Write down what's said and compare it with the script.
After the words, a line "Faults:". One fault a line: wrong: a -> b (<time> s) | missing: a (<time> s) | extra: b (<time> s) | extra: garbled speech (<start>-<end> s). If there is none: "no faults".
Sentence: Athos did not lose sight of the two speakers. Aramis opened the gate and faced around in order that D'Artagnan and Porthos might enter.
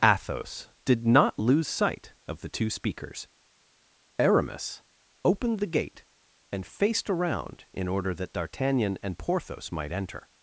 Athos did not lose sight of the two speakers. Aramis opened the gate and faced around in order that D'Artagnan and Porthos might enter.
Faults:
no faults